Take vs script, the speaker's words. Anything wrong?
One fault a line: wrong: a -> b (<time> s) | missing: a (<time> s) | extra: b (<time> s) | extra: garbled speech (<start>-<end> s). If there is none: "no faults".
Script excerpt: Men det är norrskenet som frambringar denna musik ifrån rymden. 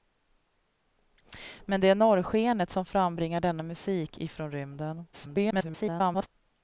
extra: garbled speech (5.1-6.3 s)